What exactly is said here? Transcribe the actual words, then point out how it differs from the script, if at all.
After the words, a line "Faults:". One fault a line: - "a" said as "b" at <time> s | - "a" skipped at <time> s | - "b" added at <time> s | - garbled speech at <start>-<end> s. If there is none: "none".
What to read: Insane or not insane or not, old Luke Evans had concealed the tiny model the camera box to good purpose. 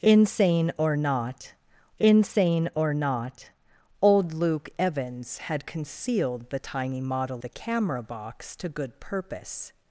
Insane or not insane or not, old Luke Evans had concealed the tiny model the camera box to good purpose.
Faults:
none